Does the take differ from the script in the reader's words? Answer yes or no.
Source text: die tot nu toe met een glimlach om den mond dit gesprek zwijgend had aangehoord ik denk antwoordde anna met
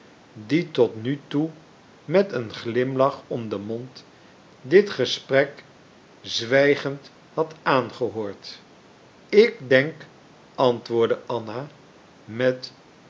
no